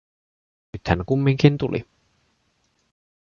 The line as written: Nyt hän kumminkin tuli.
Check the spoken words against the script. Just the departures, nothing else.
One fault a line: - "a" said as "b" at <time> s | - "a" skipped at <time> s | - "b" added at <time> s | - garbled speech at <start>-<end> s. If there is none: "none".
none